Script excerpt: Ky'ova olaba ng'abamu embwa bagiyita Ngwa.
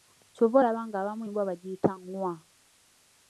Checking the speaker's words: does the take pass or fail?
pass